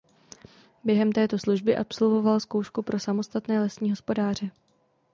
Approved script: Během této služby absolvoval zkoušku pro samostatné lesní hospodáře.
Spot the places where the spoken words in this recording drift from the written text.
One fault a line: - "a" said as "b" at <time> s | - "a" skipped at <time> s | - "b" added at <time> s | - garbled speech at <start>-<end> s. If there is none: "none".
none